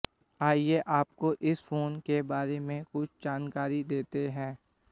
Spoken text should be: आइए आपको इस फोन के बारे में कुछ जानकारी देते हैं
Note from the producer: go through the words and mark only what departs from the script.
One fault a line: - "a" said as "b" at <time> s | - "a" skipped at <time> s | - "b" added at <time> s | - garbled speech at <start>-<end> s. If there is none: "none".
none